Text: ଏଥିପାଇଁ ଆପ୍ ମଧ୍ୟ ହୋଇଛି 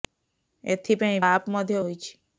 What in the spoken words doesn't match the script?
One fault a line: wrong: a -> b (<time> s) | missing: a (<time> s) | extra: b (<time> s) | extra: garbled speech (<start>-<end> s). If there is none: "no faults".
no faults